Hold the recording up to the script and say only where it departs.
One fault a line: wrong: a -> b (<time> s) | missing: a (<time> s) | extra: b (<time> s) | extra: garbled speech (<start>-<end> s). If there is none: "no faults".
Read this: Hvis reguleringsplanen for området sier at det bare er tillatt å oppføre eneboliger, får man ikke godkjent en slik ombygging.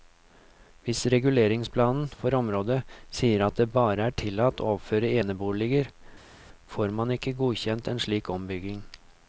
no faults